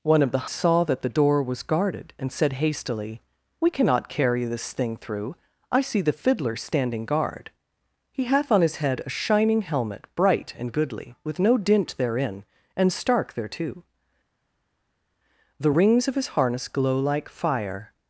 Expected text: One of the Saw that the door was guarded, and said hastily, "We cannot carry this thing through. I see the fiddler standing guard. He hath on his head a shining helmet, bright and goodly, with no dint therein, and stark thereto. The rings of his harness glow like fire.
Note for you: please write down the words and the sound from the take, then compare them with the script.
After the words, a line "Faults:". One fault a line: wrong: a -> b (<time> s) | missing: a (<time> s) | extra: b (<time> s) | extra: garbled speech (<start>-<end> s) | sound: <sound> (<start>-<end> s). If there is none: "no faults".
One of the Saw that the door was guarded, and said hastily, "We cannot carry this thing through. I see the fiddler standing guard. He hath on his head a shining helmet, bright and goodly, with no dint therein, and stark thereto. The rings of his harness glow like fire.
Faults:
no faults